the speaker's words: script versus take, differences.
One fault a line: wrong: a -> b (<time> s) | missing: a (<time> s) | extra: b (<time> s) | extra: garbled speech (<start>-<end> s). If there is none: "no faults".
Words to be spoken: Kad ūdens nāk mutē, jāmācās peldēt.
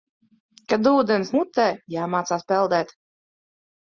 missing: nāk (1.3 s)